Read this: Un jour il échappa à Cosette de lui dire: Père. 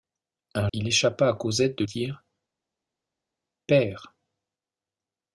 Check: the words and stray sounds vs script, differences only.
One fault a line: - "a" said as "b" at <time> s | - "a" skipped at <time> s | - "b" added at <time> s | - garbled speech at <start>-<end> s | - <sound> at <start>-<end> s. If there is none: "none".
- "jour" skipped at 0.7 s
- "lui" skipped at 1.8 s